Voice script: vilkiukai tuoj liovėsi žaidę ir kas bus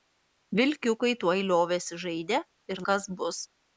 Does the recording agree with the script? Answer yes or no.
yes